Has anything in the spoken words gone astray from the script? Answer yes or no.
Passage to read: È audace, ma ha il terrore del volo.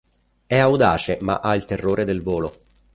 no